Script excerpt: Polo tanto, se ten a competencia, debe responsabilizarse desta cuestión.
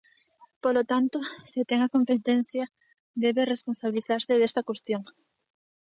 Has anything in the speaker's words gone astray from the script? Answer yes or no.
no